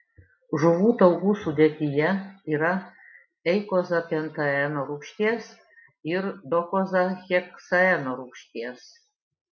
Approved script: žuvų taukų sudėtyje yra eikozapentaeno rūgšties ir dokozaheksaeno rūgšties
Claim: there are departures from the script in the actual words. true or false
false